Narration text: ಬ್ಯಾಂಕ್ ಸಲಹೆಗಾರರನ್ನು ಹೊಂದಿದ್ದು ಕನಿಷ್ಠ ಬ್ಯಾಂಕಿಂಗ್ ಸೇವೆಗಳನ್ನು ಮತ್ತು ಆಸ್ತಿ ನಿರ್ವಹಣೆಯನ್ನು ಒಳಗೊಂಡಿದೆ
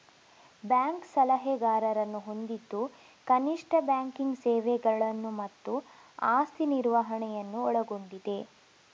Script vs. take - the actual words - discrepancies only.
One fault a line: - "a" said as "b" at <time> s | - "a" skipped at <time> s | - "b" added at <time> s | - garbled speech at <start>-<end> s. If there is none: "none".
none